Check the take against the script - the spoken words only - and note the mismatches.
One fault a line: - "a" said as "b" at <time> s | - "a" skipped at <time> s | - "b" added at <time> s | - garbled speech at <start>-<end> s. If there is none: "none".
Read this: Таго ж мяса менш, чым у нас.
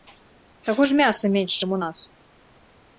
none